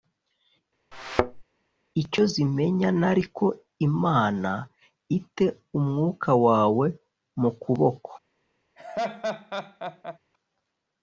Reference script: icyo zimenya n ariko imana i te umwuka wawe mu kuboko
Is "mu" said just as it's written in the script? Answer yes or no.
yes